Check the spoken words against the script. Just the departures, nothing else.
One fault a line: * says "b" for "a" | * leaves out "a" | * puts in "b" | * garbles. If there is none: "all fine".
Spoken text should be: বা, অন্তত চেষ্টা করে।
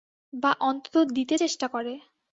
* puts in "দিতে"